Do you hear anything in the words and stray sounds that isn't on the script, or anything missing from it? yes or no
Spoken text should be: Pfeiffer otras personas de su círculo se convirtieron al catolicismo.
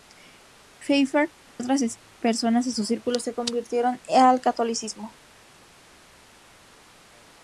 no